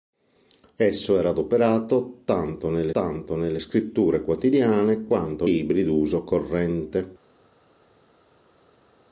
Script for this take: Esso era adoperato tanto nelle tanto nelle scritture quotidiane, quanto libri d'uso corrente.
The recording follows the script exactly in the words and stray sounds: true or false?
true